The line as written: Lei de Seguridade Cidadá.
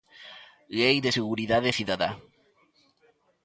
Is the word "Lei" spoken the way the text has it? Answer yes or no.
yes